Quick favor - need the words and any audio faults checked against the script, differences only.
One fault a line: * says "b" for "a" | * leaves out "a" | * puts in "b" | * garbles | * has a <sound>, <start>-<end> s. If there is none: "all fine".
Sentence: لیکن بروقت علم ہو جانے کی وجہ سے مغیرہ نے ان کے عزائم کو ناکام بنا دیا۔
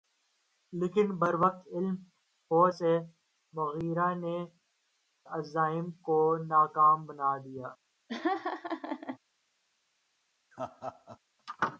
* leaves out "جانے کی وجہ"
* leaves out "ان کے"
* has a laugh, 8.1-9.2 s
* has a laugh, 10.5-11.2 s